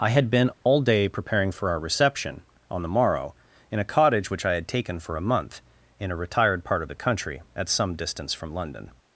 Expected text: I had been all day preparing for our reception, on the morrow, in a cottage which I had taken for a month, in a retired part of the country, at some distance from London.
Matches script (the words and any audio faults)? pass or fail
fail